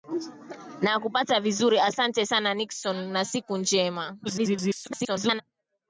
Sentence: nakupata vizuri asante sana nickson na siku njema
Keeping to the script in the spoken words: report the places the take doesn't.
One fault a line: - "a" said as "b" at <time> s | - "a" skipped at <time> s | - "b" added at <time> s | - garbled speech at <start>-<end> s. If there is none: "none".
- garbled speech at 4.2-5.4 s